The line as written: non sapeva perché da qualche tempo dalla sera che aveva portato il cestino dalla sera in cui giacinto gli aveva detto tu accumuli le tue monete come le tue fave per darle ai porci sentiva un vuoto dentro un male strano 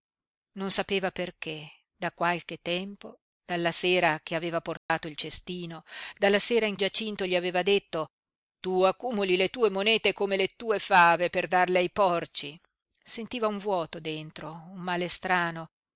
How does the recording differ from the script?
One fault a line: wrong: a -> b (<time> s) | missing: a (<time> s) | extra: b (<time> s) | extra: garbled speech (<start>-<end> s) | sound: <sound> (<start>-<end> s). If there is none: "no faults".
sound: dropout (4.8-4.9 s)
missing: cui (6.8 s)